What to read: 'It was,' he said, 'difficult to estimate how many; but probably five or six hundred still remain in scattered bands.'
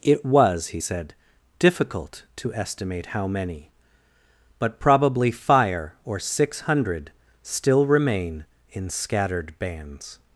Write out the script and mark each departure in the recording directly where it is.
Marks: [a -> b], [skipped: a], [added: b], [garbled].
'It was,' he said, 'difficult to estimate how many; but probably [five -> fire] or six hundred still remain in scattered bands.'